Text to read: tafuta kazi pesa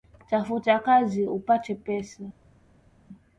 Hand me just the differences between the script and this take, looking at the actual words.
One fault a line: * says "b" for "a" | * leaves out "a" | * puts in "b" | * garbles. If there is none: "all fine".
* puts in "upate"